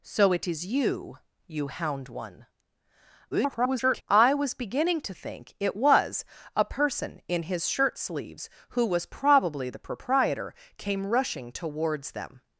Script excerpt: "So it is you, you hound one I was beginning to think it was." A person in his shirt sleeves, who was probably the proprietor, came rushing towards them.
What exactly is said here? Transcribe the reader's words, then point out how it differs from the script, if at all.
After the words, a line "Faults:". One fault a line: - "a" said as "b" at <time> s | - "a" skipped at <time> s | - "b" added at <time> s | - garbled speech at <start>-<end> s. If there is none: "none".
"So it is you, you hound one [garbled] I was beginning to think it was." A person in his shirt sleeves, who was probably the proprietor, came rushing towards them.
Faults:
- garbled speech at 3.3-4.0 s